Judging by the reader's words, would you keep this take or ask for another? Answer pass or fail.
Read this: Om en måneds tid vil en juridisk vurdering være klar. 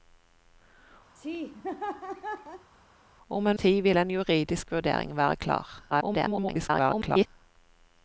fail